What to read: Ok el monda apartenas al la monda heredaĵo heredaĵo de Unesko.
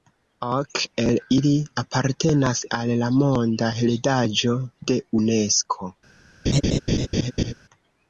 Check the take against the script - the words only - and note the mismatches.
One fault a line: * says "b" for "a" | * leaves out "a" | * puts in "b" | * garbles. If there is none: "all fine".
* says "ili" for "monda"
* leaves out "heredaĵo"